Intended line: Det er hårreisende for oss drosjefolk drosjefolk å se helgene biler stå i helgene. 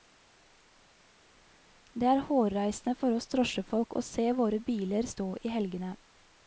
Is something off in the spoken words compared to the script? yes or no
yes